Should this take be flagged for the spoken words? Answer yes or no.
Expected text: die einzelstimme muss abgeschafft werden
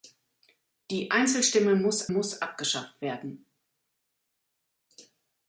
yes